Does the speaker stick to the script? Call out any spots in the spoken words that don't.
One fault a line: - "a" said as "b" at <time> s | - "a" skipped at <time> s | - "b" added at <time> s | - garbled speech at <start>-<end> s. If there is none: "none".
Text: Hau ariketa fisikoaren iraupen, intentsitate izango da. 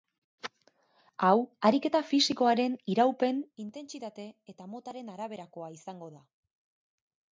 - "eta motaren araberakoa" added at 4.5 s